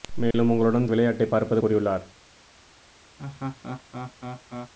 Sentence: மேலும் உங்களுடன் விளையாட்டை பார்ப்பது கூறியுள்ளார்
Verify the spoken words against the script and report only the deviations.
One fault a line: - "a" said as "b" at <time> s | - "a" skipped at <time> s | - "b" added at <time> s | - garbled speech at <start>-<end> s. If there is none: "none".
none